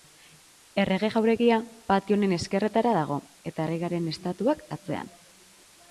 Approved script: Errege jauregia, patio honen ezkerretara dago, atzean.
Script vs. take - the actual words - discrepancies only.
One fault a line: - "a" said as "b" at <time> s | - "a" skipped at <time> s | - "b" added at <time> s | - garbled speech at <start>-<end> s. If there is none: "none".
- "eta erregearen estatuak" added at 3.5 s